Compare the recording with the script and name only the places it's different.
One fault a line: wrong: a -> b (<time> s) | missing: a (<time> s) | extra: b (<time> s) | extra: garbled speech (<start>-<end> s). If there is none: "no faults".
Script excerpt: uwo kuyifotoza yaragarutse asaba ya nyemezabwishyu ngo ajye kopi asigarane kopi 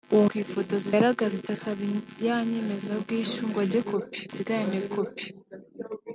no faults